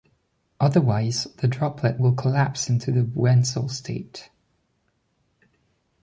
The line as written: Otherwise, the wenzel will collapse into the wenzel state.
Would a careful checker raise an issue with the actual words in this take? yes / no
yes